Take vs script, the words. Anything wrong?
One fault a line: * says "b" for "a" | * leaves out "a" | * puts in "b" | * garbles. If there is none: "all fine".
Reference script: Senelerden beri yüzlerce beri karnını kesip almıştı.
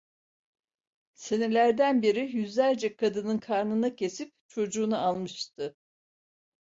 * says "kadının" for "beri"
* puts in "çocuğunu"